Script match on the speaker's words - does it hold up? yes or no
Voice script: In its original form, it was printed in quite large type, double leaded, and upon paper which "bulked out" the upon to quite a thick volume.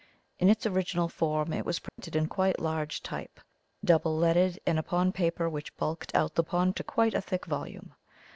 yes